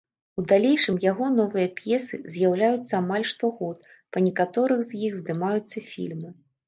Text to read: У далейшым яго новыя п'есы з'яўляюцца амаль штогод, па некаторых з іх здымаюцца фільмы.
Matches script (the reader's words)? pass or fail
pass